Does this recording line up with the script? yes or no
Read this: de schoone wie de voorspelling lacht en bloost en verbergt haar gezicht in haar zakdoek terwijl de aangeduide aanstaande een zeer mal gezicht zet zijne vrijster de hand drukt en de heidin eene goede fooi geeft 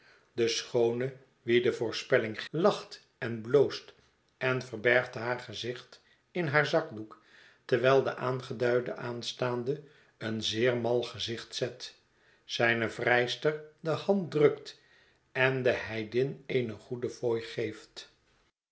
yes